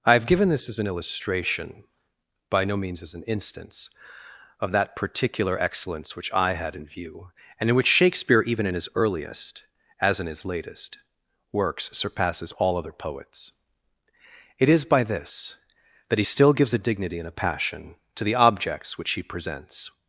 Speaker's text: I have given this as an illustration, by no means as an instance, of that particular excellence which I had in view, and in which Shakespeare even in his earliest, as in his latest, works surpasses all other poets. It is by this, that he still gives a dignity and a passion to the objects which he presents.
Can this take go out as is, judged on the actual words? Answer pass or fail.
pass